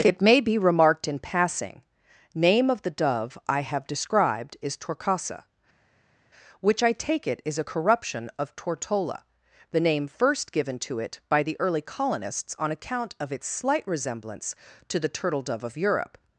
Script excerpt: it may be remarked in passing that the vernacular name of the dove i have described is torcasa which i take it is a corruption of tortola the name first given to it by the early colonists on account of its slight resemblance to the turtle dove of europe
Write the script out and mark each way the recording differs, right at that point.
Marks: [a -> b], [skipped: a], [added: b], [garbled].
it may be remarked in passing [skipped: that the vernacular] name of the dove i have described is torcasa which i take it is a corruption of tortola the name first given to it by the early colonists on account of its slight resemblance to the turtle dove of europe